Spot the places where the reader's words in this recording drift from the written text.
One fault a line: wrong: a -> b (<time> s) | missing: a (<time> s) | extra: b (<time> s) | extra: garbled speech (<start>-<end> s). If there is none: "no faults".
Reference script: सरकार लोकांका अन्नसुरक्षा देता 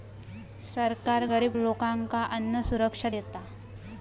extra: गरिब (1.2 s)